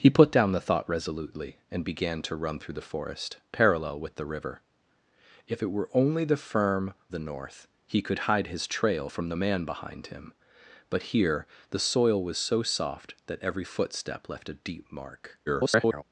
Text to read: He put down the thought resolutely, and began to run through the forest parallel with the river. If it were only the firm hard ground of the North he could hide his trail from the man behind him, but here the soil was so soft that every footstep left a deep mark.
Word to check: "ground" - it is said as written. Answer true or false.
false